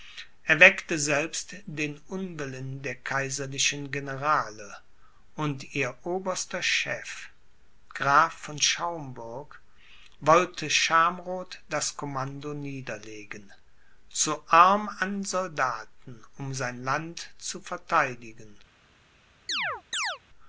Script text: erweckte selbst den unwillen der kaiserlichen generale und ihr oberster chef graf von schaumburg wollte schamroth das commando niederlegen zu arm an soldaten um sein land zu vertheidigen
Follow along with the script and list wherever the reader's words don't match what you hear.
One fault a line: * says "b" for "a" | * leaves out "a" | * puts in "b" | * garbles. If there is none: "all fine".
all fine